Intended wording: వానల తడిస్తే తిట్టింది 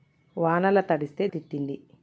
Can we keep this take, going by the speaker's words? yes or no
yes